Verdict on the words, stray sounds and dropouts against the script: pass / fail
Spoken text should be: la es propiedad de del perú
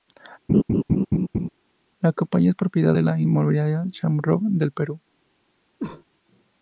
fail